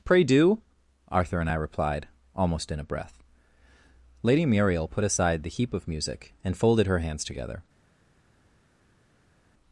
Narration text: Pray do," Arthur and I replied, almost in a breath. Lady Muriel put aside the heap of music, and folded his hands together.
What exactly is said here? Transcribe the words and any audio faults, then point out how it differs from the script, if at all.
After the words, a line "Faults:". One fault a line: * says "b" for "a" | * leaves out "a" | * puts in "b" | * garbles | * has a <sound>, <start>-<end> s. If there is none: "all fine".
Pray do," Arthur and I replied, almost in a breath. Lady Muriel put aside the heap of music, and folded her hands together.
Faults:
* says "her" for "his"